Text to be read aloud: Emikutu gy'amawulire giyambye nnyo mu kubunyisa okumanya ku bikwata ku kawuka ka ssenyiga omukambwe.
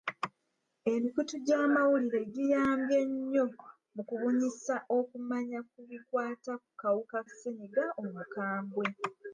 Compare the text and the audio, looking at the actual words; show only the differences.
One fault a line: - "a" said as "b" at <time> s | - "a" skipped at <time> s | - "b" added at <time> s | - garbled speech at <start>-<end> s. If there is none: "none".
- "ka" skipped at 7.2 s